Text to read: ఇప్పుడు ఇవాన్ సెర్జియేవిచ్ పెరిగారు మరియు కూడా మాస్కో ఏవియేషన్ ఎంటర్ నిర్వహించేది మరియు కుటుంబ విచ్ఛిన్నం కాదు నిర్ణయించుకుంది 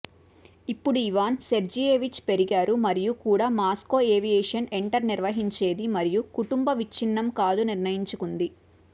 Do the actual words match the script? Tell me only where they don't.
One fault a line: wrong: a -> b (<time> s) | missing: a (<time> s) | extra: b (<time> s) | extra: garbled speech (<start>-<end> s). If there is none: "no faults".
no faults